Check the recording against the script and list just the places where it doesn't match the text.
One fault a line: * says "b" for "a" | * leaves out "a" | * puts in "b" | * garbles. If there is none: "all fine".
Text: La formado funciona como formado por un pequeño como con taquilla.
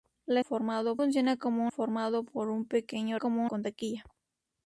all fine